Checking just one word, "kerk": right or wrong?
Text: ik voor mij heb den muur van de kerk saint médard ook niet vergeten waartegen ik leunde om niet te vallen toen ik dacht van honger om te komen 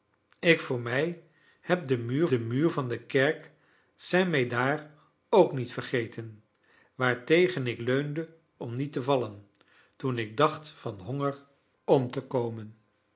right